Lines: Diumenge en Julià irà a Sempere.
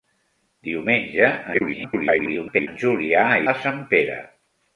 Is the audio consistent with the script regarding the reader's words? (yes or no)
no